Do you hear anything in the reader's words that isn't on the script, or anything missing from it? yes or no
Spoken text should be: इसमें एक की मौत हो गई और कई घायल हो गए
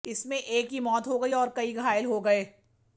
no